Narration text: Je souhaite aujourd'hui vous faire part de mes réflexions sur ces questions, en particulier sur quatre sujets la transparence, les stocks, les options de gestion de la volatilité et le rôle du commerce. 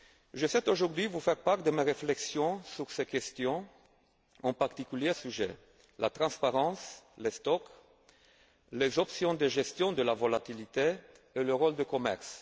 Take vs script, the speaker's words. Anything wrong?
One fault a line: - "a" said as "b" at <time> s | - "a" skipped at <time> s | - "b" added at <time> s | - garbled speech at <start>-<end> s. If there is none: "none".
- "sur quatre" skipped at 5.1 s